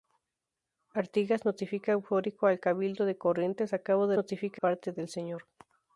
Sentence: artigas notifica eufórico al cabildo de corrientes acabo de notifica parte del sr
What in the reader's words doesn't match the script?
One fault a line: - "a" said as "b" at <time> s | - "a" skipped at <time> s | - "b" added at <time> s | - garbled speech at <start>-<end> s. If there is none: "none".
none